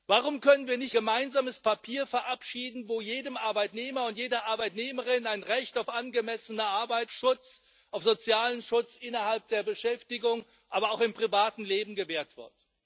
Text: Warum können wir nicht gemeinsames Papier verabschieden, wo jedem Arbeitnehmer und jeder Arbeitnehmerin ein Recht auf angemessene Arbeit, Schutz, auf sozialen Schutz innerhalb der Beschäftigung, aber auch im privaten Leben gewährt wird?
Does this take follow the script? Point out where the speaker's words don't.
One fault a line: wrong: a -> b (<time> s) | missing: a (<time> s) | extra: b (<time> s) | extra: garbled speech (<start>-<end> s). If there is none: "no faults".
no faults